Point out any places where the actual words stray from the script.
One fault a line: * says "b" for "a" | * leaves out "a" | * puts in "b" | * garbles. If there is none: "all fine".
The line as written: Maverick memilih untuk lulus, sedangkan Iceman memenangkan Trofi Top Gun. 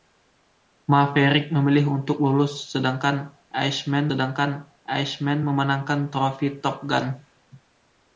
* puts in "sedangkan Iceman"